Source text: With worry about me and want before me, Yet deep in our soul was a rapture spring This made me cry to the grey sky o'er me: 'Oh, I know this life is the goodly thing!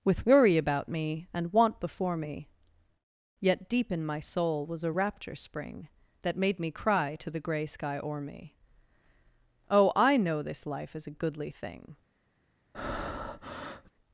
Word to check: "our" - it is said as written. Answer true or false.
false